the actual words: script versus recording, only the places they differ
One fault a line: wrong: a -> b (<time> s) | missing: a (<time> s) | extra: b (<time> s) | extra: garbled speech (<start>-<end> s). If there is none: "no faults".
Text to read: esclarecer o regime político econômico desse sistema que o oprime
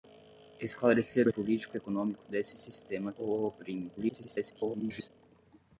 missing: regime (1.3 s)
missing: que (3.1 s)
extra: garbled speech (4.0-5.1 s)